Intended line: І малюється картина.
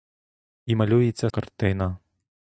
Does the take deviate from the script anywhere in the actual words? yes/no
no